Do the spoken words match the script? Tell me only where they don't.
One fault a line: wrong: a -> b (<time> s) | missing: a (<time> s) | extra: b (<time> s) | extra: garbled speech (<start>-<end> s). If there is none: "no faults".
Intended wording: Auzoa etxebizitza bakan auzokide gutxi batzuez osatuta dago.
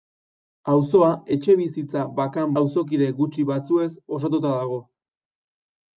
no faults